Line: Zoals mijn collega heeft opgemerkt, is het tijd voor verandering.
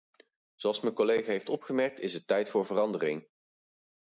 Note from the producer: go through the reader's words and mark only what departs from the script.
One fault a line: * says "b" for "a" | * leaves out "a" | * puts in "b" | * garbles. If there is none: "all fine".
all fine